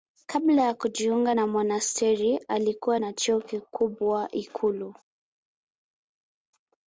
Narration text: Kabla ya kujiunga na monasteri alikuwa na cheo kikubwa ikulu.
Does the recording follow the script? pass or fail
pass